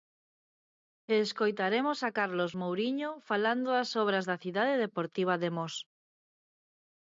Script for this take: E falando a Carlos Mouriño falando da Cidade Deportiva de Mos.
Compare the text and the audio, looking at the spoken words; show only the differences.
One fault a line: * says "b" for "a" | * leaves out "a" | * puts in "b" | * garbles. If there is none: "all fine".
* says "escoitaremos" for "falando"
* puts in "das obras"